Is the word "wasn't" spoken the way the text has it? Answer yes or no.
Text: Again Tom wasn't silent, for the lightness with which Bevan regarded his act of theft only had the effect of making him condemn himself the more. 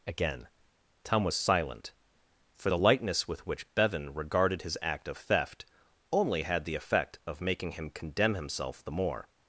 no